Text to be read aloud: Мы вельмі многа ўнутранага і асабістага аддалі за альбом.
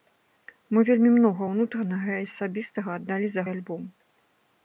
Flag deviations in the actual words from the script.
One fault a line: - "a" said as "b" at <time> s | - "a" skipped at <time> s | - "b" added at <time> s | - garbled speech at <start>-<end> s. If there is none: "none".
none